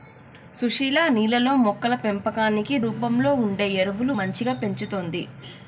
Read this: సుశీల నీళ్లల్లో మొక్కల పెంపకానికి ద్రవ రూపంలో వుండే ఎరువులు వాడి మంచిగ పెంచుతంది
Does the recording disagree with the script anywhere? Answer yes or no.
yes